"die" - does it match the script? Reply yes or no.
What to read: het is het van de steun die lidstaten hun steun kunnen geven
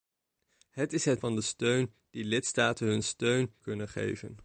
yes